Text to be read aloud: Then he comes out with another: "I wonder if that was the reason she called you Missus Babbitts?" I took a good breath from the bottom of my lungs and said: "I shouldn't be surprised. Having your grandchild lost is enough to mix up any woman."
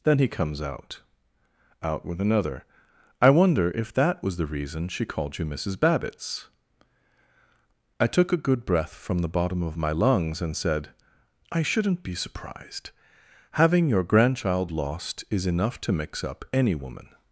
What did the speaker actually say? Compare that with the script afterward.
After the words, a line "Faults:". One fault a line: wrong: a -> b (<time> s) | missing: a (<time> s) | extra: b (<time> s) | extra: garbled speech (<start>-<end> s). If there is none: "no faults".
Then he comes out out with another: "I wonder if that was the reason she called you Missus Babbitts?" I took a good breath from the bottom of my lungs and said: "I shouldn't be surprised. Having your grandchild lost is enough to mix up any woman."
Faults:
extra: out (1.8 s)